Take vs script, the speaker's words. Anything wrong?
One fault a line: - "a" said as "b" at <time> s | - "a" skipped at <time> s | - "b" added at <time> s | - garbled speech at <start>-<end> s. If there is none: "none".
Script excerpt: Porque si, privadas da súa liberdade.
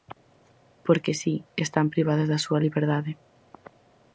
- "están" added at 1.6 s